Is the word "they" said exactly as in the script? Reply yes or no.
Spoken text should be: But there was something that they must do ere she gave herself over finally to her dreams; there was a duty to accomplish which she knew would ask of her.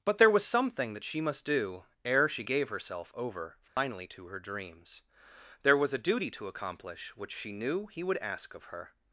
no